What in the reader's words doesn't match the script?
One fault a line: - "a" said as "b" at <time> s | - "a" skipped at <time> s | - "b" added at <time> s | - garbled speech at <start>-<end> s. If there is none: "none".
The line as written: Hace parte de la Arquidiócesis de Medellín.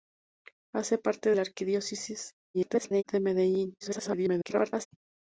- "de" skipped at 1.3 s
- garbled speech at 2.5-3.0 s
- garbled speech at 3.8-4.9 s